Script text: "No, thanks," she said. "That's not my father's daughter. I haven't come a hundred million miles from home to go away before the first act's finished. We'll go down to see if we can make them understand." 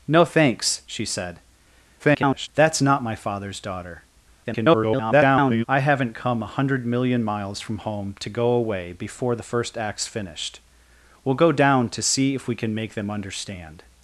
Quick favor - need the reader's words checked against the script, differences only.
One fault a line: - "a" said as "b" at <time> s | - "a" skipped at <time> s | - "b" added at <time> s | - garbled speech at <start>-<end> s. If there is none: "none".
- garbled speech at 2.0-2.5 s
- garbled speech at 4.4-5.6 s